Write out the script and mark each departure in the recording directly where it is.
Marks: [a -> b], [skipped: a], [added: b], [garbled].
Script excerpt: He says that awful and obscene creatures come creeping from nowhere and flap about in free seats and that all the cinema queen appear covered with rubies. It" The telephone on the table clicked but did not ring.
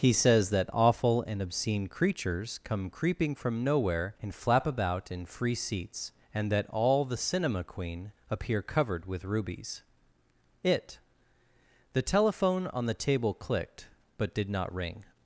He says that awful and obscene creatures come creeping from nowhere and flap about in free seats and that all the cinema queen appear covered with rubies. It" The telephone on the table clicked but did not ring.